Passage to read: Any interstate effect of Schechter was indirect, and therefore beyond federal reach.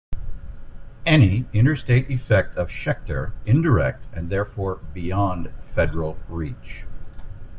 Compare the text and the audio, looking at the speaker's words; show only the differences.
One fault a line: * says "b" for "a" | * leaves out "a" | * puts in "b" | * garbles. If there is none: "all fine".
* leaves out "was"